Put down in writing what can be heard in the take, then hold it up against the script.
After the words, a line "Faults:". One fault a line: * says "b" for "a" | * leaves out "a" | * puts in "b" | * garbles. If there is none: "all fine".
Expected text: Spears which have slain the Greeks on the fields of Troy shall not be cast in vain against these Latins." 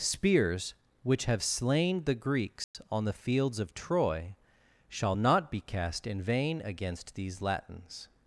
Spears which have slain the Greeks on the fields of Troy shall not be cast in vain against these Latins."
Faults:
all fine